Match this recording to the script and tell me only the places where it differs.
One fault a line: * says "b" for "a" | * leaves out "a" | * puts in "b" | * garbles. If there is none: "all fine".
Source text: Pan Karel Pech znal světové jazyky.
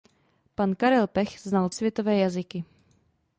all fine